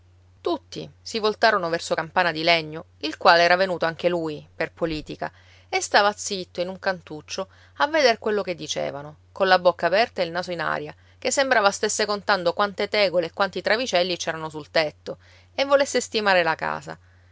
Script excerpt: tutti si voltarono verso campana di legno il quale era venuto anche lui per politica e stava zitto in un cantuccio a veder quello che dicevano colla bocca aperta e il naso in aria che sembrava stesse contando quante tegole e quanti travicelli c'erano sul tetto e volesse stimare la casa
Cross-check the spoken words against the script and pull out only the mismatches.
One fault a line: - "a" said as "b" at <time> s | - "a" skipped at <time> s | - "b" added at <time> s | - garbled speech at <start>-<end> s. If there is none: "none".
none